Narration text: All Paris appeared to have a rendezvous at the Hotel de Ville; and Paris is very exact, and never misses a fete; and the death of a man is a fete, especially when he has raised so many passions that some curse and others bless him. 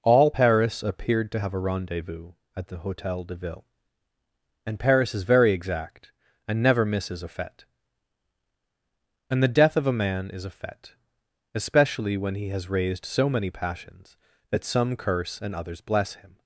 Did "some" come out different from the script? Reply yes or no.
no